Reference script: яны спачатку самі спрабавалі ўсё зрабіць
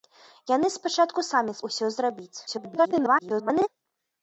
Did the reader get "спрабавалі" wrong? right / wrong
wrong